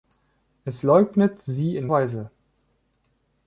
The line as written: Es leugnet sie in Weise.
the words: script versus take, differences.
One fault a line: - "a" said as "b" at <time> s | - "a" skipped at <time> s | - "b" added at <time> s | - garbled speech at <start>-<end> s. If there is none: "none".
none